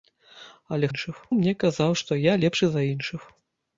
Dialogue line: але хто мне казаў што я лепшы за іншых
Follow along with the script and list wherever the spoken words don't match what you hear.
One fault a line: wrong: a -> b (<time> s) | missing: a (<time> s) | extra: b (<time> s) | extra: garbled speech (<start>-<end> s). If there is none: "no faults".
wrong: хто -> іншых (0.9 s)